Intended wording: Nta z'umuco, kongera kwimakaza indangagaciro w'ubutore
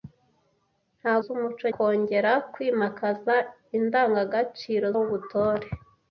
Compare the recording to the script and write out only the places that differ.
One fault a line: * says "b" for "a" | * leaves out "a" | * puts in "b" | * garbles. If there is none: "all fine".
all fine